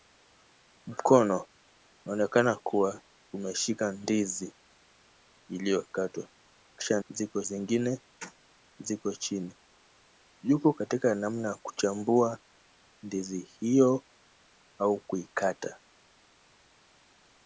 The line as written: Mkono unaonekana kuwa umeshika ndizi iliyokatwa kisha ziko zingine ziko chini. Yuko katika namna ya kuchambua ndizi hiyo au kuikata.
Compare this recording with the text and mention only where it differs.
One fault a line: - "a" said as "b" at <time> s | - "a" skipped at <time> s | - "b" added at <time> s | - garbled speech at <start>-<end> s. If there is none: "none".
none